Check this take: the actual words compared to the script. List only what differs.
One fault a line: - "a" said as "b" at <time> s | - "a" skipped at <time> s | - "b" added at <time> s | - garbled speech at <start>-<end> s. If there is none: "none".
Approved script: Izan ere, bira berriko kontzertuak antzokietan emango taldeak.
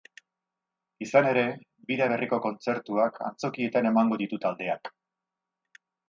- "ditu" added at 4.2 s